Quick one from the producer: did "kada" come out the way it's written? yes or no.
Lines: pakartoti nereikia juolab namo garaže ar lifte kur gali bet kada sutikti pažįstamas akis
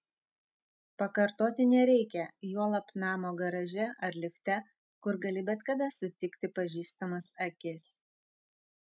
yes